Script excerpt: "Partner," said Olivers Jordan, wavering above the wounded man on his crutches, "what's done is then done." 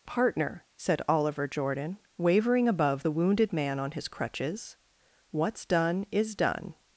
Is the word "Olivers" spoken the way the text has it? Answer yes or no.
no